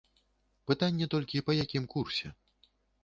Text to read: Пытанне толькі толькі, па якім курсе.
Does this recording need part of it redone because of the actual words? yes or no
yes